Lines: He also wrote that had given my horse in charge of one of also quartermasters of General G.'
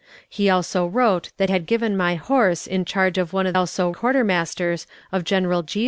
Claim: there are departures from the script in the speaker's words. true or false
false